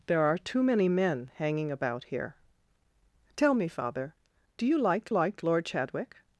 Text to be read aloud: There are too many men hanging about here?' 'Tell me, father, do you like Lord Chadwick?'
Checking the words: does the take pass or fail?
fail